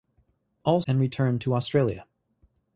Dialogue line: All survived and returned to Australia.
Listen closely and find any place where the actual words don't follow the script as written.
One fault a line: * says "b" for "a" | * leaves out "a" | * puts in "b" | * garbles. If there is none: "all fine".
* leaves out "survived"